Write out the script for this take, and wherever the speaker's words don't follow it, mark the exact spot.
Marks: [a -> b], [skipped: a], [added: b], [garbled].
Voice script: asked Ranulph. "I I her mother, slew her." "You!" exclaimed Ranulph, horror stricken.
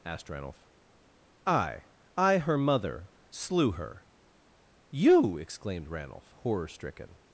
asked Ranulph. "I I her mother, slew her." "You!" exclaimed Ranulph, horror stricken.